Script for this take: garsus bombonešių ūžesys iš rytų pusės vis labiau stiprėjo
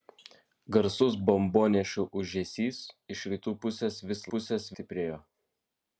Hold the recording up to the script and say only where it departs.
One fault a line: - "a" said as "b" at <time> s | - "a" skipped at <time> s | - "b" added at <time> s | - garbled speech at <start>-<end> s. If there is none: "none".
- "labiau" said as "pusės" at 4.4 s